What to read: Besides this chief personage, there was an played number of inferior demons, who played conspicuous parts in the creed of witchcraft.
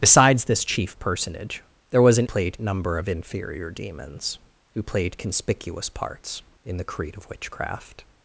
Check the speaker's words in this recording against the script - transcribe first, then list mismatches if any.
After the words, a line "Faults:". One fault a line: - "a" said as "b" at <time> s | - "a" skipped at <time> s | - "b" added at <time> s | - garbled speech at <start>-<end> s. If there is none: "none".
Besides this chief personage, there was an played number of inferior demons, who played conspicuous parts in the creed of witchcraft.
Faults:
none